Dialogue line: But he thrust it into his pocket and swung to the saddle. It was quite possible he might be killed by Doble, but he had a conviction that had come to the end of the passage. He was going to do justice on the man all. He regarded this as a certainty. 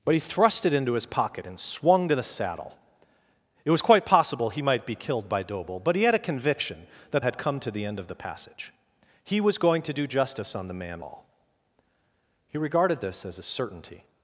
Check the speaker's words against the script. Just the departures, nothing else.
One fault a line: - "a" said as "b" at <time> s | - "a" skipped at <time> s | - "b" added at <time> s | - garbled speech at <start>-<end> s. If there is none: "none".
none